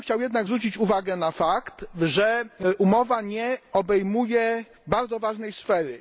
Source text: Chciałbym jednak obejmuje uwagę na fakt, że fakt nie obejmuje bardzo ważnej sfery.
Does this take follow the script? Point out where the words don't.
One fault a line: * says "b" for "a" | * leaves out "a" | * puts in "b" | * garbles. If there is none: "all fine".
* says "zwrócić" for "obejmuje"
* says "umowa" for "fakt"